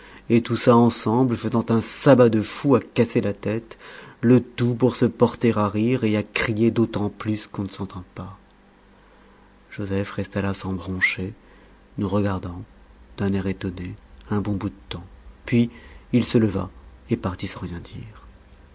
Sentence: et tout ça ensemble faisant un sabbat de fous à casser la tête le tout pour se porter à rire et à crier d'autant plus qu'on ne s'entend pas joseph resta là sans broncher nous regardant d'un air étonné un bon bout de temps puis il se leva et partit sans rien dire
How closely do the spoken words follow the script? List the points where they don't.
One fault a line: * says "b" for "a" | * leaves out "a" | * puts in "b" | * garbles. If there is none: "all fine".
all fine